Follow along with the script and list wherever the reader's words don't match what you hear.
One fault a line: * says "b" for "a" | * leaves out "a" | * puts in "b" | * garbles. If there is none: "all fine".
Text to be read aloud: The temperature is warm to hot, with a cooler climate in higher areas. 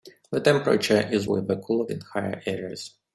* leaves out "warm to hot"
* leaves out "climate"